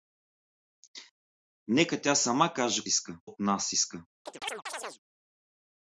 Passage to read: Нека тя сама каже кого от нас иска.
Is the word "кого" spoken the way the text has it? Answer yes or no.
no